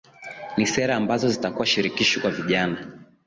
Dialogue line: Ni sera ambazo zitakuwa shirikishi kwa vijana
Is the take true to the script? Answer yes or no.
yes